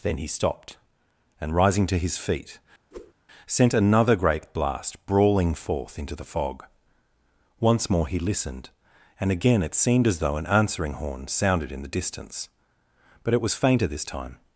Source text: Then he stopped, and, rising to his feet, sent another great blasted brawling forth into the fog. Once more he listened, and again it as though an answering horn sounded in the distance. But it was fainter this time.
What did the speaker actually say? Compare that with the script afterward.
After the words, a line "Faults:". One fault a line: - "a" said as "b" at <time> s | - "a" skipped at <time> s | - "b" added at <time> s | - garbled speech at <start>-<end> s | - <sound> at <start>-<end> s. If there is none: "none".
Then he stopped, and, rising to his feet, sent another great blast brawling forth into the fog. Once more he listened, and again it seemed as though an answering horn sounded in the distance. But it was fainter this time.
Faults:
- whoosh at 2.9-3.1 s
- "blasted" said as "blast" at 4.5 s
- "seemed" added at 9.7 s